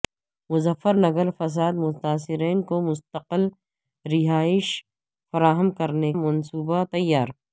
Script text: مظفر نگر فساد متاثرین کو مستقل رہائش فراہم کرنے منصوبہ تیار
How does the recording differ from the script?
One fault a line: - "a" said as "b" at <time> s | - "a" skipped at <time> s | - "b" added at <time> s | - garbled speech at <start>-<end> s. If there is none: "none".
none